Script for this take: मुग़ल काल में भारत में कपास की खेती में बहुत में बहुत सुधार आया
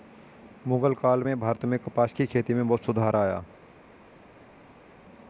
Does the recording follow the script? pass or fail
fail